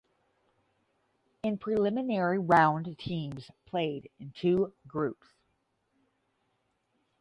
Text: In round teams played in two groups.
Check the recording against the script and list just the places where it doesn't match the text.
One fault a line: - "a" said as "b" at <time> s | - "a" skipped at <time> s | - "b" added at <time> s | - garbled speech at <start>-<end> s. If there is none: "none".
- "preliminary" added at 1.6 s